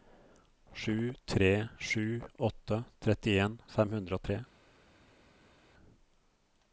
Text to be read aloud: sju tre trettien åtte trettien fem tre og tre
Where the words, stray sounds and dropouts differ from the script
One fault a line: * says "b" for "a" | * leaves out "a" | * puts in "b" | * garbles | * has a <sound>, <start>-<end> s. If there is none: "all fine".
* says "sju" for "trettien"
* says "hundre" for "tre"